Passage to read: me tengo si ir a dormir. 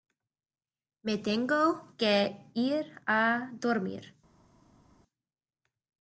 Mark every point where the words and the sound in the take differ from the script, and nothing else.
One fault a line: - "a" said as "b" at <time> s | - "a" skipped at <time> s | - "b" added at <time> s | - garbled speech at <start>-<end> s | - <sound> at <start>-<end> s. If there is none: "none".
- "si" said as "que" at 2.0 s